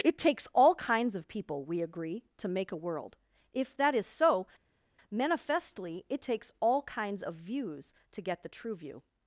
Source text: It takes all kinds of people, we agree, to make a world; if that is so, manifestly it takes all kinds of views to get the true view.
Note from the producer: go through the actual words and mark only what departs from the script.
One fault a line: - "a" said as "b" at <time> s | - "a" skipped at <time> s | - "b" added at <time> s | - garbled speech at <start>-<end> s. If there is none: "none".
none